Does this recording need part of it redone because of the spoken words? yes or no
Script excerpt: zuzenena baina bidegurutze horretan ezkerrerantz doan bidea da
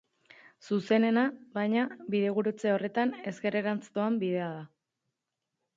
no